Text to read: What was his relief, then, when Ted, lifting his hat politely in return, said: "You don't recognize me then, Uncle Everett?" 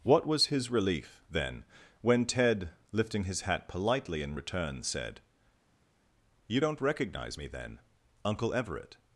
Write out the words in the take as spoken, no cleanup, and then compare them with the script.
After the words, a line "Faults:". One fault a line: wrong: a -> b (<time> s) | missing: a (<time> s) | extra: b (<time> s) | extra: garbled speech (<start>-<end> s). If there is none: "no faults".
What was his relief, then, when Ted, lifting his hat politely in return, said: "You don't recognize me then, Uncle Everett?"
Faults:
no faults